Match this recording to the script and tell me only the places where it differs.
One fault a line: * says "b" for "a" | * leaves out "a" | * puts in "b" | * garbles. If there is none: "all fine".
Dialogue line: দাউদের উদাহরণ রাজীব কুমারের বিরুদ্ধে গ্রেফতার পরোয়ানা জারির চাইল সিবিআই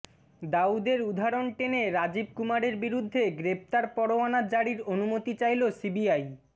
* puts in "টেনে"
* puts in "অনুমতি"